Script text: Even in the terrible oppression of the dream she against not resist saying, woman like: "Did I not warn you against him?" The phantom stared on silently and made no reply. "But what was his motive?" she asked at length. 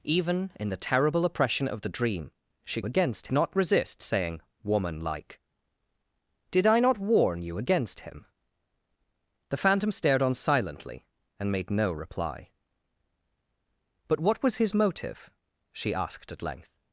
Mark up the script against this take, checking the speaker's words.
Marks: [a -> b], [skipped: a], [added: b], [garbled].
Even in the terrible oppression of the dream she against not resist saying, woman like: "Did I not warn you against him?" The phantom stared on silently and made no reply. "But what was his motive?" she asked at length.